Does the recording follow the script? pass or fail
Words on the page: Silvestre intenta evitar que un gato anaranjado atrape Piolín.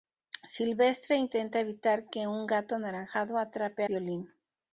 pass